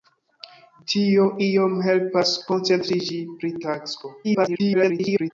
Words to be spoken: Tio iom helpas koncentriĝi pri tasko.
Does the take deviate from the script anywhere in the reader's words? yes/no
yes